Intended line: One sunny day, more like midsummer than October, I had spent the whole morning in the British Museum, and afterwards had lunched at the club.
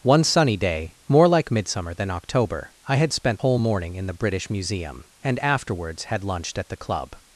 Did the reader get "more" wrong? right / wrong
right